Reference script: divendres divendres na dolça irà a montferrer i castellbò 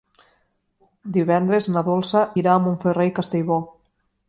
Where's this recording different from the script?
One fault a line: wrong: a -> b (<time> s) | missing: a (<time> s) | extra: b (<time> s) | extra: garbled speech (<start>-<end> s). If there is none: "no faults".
missing: divendres (1.7 s)